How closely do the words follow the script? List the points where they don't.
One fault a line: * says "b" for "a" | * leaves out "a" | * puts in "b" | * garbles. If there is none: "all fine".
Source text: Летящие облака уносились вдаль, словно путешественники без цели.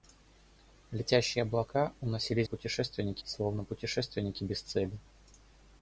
* says "путешественники" for "вдаль"